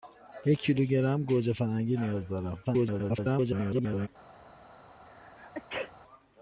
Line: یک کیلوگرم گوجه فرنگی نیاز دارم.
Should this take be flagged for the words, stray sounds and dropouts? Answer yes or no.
yes